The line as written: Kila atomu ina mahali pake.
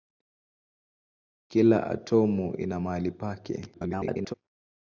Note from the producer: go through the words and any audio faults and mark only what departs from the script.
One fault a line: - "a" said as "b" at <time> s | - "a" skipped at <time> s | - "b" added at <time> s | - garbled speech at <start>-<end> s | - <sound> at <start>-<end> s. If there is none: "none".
- garbled speech at 3.7-4.3 s